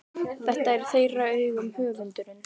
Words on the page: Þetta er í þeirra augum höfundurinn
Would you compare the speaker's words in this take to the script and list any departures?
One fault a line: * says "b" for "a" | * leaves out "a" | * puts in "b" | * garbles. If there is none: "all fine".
all fine